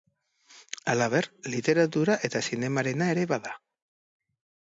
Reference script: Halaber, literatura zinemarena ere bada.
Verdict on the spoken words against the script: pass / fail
fail